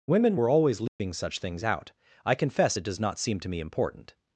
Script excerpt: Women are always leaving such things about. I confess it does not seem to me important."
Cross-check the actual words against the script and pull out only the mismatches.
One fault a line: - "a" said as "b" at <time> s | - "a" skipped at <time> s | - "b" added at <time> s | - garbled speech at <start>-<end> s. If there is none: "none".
- "are" said as "were" at 0.3 s
- "about" said as "out" at 1.6 s